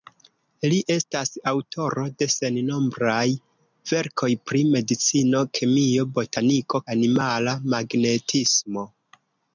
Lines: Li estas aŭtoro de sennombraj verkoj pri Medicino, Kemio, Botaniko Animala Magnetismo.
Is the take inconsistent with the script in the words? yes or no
no